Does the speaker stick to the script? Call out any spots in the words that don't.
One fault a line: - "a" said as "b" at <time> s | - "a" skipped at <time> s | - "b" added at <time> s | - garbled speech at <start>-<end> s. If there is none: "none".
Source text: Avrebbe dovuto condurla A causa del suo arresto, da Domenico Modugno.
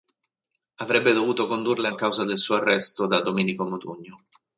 none